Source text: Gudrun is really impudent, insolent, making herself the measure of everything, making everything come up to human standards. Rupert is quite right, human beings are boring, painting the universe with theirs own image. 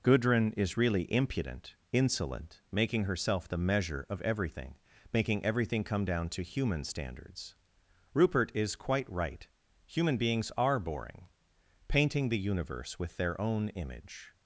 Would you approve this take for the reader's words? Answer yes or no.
no